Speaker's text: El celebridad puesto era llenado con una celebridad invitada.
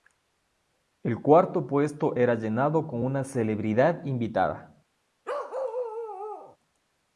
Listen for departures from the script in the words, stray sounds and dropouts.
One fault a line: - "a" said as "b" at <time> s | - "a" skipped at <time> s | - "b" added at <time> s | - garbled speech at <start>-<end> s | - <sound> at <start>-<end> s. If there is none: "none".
- "celebridad" said as "cuarto" at 1.2 s
- bark at 5.2-6.6 s